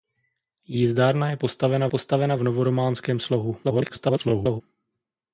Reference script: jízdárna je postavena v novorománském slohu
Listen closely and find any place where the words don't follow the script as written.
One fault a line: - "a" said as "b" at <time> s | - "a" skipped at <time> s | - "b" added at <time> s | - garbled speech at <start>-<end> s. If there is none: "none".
- "postavena" added at 1.9 s
- garbled speech at 3.6-4.6 s